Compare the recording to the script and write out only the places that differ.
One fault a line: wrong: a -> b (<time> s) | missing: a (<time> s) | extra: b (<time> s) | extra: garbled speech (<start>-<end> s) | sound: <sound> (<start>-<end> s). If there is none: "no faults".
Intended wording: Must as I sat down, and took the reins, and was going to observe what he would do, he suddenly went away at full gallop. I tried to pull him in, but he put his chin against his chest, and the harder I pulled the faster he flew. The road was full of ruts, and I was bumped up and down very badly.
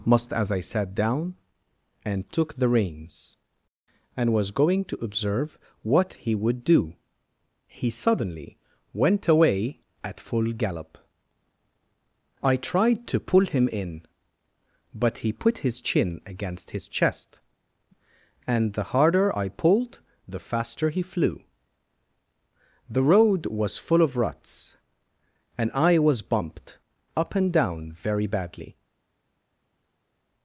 no faults